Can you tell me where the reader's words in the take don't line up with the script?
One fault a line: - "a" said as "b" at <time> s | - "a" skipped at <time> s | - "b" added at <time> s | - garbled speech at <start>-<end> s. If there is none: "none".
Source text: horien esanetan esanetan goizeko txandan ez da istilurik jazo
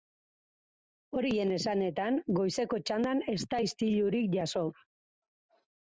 - "esanetan" skipped at 2.2 s